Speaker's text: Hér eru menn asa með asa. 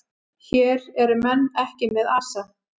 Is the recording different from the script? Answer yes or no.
yes